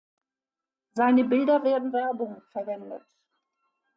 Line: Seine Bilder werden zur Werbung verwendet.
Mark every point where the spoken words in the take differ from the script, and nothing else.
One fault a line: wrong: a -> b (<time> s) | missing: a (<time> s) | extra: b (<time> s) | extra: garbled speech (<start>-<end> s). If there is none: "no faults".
missing: zur (1.9 s)